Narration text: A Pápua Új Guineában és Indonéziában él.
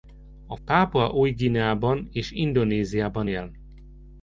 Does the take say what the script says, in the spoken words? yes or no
yes